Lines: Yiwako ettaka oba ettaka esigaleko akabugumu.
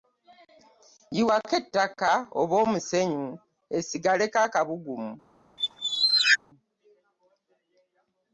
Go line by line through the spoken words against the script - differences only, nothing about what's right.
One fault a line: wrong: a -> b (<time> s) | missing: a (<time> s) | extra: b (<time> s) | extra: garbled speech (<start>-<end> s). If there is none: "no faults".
wrong: ettaka -> omusenyu (2.6 s)